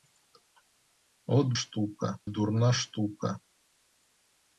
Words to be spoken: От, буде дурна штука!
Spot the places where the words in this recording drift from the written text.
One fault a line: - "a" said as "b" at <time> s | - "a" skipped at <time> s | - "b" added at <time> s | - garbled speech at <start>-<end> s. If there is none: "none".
- "буде" said as "штука" at 1.5 s